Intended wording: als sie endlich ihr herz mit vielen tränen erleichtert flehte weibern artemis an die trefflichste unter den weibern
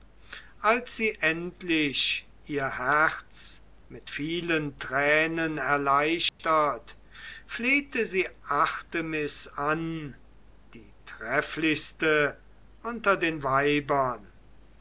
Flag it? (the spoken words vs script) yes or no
yes